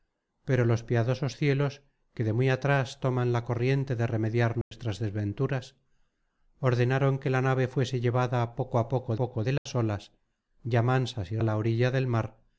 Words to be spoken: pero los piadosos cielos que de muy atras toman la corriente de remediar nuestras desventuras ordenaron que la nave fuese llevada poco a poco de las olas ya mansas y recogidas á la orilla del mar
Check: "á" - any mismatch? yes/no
yes